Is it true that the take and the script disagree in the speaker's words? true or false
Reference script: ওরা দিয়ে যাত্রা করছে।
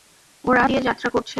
false